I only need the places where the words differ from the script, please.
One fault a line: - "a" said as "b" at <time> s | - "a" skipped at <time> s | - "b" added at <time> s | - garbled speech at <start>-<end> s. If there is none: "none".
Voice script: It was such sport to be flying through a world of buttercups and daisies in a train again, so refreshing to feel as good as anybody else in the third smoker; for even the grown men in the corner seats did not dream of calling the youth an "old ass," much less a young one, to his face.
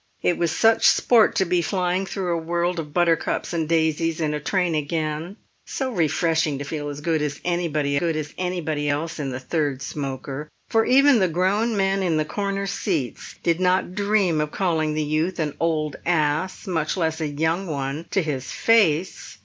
- "good as anybody" added at 8.0 s